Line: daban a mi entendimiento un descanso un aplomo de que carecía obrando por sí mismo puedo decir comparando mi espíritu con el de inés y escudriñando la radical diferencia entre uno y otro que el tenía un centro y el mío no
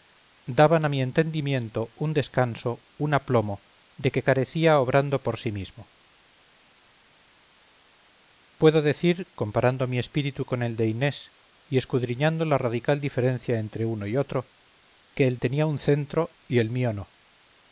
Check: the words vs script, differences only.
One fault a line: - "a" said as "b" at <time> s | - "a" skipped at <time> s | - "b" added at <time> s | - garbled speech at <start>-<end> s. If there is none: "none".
none